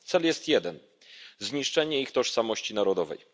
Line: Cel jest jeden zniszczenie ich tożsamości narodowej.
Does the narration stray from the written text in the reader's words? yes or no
no